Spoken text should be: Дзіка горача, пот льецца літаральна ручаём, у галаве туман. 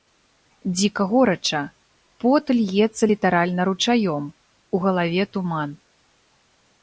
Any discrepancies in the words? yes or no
no